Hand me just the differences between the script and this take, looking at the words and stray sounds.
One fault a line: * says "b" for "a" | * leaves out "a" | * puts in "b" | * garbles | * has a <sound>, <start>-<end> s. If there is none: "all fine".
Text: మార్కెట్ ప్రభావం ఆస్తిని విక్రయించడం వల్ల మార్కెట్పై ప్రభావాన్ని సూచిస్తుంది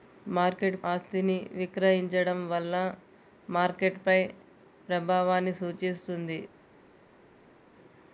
* leaves out "ప్రభావం"